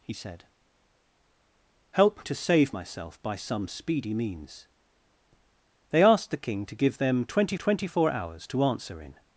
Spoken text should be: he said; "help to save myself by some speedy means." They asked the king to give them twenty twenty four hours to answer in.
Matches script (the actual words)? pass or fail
pass